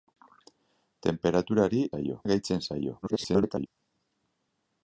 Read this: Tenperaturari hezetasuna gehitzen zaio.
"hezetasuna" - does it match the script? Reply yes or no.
no